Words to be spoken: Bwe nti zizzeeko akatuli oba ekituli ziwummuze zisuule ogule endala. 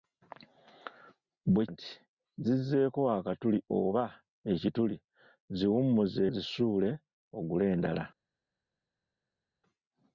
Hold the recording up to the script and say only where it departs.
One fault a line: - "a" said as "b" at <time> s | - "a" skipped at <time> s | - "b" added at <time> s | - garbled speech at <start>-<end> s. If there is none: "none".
none